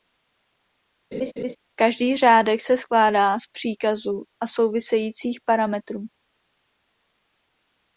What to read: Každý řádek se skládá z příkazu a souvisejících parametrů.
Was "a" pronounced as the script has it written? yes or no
yes